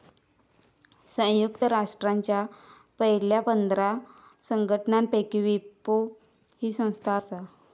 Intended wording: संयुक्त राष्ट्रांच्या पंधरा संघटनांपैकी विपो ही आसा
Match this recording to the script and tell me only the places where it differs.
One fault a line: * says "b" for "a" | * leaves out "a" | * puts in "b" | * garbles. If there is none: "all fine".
* puts in "पयल्या"
* puts in "संस्था"